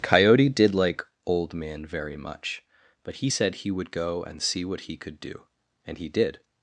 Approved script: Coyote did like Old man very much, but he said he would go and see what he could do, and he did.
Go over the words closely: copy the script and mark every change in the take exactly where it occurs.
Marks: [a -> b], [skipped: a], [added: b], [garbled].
Coyote did like Old man very much, but he said he would go and see what he could do, and he did.